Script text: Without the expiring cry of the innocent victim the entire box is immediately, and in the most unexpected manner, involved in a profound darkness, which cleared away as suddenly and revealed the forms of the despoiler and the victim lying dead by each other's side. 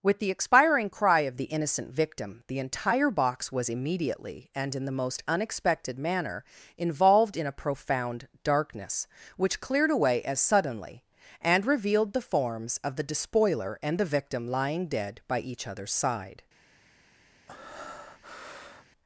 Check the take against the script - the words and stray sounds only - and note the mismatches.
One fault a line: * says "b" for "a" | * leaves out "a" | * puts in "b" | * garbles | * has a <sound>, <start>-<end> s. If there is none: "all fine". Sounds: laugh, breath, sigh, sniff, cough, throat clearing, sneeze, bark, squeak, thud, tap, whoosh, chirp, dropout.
* says "With" for "Without"
* says "was" for "is"
* has a breath, 17.5-18.9 s